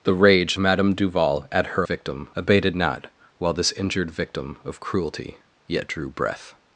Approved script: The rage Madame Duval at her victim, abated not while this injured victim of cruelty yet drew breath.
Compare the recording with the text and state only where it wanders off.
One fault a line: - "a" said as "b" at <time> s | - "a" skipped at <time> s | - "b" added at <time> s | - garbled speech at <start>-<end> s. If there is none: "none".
none